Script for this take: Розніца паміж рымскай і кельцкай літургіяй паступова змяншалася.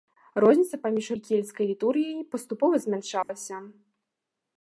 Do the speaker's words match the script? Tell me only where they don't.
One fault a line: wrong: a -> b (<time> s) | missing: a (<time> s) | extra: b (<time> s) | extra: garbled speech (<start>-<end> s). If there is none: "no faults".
missing: рымскай (1.1 s)